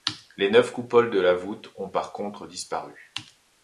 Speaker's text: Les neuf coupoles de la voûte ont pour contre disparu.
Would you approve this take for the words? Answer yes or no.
no